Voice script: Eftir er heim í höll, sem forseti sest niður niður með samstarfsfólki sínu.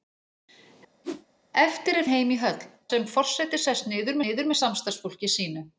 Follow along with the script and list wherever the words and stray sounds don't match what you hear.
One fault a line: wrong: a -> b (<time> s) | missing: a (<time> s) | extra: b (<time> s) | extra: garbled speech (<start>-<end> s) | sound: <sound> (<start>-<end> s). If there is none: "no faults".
sound: whoosh (1.0-1.3 s)